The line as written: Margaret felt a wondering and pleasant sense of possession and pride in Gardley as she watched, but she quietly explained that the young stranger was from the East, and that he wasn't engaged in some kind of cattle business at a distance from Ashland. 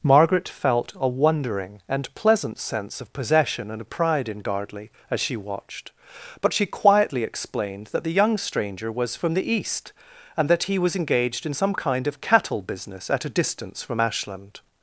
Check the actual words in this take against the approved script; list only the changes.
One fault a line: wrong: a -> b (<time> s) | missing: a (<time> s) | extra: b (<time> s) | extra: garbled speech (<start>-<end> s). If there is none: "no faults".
wrong: wasn't -> was (10.8 s)